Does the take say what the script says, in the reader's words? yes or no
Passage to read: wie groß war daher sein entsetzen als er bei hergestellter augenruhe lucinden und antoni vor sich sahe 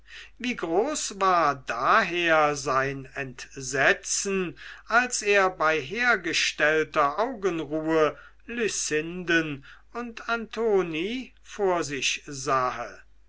yes